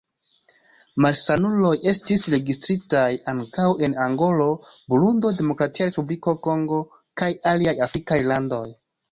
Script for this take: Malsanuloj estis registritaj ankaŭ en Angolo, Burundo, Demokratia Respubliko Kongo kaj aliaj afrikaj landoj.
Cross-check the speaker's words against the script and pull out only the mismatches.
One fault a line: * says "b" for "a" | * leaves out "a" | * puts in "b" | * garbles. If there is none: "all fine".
all fine